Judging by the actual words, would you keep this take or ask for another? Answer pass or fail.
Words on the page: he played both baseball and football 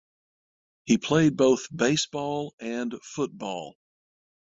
pass